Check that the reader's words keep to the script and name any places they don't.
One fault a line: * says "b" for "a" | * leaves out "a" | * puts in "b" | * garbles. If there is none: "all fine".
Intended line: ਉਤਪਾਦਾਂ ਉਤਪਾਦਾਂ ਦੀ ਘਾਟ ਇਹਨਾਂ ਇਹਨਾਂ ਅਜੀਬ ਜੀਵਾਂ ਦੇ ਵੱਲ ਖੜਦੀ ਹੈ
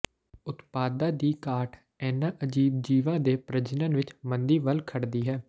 * leaves out "ਉਤਪਾਦਾਂ"
* leaves out "ਇਹਨਾਂ"
* puts in "ਪ੍ਰਜਨਨ ਵਿੱਚ ਮੰਦੀ"